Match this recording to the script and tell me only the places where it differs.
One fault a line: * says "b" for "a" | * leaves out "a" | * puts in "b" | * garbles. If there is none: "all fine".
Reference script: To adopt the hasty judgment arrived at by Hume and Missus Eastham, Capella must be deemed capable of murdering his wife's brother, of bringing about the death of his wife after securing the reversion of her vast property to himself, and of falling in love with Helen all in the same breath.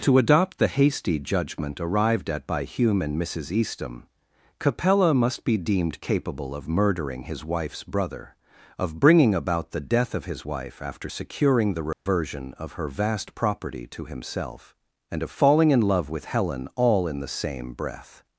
all fine